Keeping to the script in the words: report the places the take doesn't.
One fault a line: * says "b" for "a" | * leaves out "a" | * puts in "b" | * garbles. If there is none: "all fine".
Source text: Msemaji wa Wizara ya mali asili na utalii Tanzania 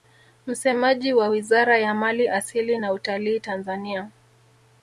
all fine